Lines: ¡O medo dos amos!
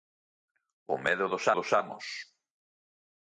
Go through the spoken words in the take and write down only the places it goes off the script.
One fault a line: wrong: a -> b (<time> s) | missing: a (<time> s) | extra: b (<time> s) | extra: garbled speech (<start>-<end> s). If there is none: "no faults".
extra: dos (1.5 s)